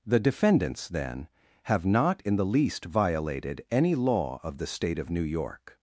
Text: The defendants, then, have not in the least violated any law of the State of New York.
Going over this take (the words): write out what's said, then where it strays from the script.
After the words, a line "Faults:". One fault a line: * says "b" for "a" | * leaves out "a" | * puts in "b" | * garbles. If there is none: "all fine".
The defendants, then, have not in the least violated any law of the State of New York.
Faults:
all fine